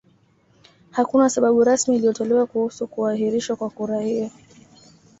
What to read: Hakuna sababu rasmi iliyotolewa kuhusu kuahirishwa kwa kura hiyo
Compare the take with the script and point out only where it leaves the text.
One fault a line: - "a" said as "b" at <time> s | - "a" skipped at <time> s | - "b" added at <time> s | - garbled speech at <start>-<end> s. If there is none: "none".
none